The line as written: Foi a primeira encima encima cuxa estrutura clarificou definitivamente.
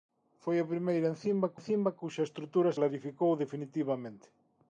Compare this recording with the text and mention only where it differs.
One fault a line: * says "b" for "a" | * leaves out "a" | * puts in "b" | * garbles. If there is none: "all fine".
all fine